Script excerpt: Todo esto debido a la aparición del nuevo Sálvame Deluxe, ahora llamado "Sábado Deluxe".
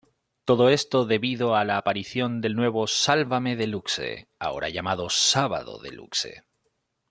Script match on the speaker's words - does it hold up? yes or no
yes